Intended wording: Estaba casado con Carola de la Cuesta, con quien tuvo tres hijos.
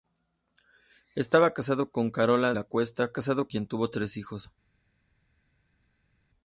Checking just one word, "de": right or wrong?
wrong